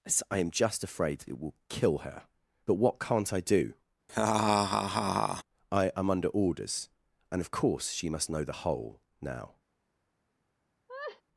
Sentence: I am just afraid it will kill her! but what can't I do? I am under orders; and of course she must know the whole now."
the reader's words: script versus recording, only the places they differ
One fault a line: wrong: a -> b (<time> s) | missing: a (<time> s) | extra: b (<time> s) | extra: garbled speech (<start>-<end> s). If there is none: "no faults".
no faults